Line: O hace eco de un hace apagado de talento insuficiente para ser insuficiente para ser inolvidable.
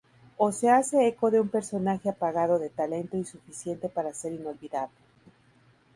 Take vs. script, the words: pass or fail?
fail